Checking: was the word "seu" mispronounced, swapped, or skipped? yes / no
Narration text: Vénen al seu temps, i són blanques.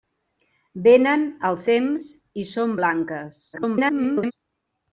yes